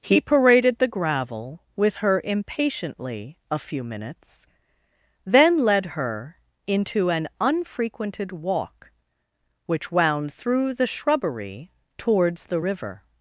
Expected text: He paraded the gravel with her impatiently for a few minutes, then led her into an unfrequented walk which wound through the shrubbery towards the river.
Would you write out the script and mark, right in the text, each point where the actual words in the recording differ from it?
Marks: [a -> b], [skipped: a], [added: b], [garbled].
He paraded the gravel with her impatiently [skipped: for] a few minutes, then led her into an unfrequented walk which wound through the shrubbery towards the river.